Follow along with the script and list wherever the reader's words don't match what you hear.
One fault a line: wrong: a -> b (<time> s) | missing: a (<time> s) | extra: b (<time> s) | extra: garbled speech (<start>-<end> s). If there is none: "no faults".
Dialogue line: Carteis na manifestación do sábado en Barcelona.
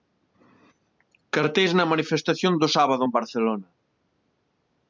no faults